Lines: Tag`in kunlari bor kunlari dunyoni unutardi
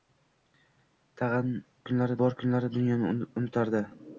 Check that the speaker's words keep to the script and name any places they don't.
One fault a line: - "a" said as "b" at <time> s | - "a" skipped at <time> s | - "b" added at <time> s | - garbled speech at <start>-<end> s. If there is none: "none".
none